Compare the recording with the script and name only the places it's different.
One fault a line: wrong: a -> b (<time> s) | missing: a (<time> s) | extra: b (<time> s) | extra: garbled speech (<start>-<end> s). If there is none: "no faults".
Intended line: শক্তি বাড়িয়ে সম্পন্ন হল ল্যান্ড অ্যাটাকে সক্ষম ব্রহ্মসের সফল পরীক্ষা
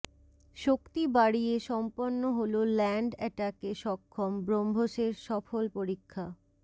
no faults